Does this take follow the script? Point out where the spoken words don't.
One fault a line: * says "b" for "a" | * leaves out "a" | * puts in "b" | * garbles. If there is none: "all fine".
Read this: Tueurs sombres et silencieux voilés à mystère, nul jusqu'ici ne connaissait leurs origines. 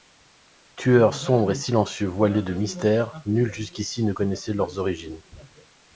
* says "de" for "à"